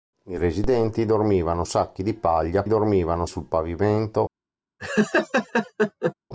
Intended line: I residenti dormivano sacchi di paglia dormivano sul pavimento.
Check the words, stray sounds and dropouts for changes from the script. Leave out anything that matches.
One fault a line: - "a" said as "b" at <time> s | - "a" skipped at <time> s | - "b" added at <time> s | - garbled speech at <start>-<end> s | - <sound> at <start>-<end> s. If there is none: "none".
- laugh at 4.8-6.1 s